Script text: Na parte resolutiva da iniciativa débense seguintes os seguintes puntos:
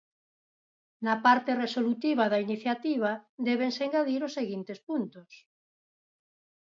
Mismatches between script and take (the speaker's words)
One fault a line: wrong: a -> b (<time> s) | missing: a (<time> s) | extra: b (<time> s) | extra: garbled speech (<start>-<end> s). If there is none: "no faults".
wrong: seguintes -> engadir (3.9 s)